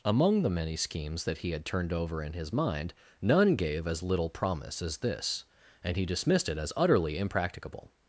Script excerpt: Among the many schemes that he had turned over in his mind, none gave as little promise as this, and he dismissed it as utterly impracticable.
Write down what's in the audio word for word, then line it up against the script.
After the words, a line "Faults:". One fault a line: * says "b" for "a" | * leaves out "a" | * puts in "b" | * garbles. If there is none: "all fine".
Among the many schemes that he had turned over in his mind, none gave as little promise as this, and he dismissed it as utterly impracticable.
Faults:
all fine